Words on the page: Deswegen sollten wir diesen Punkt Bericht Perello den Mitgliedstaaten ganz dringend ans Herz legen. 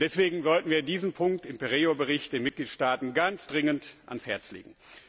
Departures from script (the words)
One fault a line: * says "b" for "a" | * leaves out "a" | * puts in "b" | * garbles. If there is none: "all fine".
* puts in "im"